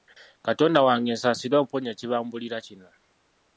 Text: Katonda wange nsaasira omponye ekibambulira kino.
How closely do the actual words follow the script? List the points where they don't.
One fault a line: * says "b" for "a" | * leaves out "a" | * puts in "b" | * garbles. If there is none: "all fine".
all fine